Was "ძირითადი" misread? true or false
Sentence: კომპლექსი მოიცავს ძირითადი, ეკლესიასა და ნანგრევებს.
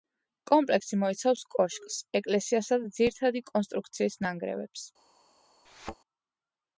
true